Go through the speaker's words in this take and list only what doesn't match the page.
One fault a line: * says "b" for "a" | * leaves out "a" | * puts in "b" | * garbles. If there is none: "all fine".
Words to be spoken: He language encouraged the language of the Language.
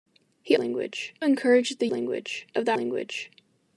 all fine